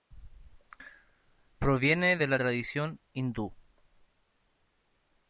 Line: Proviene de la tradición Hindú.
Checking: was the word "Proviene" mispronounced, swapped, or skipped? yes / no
no